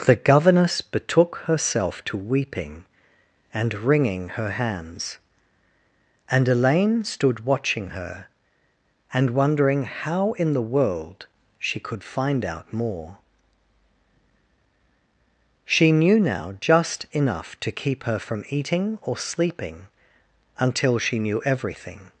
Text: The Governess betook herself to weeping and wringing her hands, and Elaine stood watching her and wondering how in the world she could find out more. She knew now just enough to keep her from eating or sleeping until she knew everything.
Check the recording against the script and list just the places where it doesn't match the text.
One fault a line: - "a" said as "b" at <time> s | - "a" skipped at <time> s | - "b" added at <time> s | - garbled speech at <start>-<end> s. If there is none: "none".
none